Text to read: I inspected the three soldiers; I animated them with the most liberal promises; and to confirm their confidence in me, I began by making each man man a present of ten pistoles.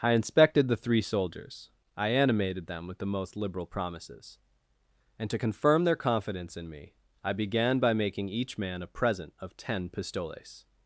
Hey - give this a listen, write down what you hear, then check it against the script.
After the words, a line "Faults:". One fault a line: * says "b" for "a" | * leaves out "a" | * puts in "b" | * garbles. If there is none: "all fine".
I inspected the three soldiers; I animated them with the most liberal promises; and to confirm their confidence in me, I began by making each man a present of ten pistoles.
Faults:
* leaves out "man"